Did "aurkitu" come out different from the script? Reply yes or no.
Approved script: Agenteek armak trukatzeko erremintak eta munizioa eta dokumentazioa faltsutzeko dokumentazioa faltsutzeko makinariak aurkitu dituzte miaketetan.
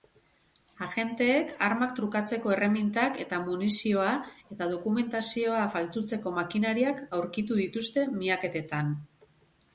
no